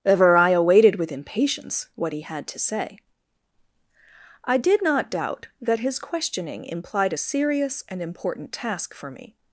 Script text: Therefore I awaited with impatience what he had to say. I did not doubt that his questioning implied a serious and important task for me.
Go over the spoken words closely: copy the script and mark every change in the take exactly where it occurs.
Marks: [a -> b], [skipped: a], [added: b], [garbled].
[Therefore -> Ever] I awaited with impatience what he had to say. I did not doubt that his questioning implied a serious and important task for me.